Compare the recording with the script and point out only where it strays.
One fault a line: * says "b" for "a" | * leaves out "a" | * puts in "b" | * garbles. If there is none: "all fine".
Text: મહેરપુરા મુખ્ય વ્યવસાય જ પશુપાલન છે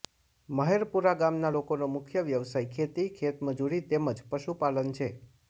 * puts in "ગામના લોકોનો"
* puts in "ખેતી ખેતમજૂરી તેમ"